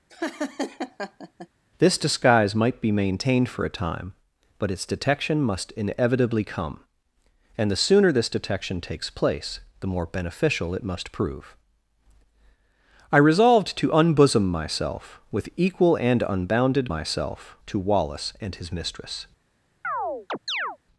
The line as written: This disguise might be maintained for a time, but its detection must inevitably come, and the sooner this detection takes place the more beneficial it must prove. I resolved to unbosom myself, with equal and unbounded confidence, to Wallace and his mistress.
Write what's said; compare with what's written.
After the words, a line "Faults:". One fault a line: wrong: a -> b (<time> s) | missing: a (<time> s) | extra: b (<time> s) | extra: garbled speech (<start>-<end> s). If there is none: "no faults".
This disguise might be maintained for a time, but its detection must inevitably come, and the sooner this detection takes place the more beneficial it must prove. I resolved to unbosom myself, with equal and unbounded myself, to Wallace and his mistress.
Faults:
wrong: confidence -> myself (16.9 s)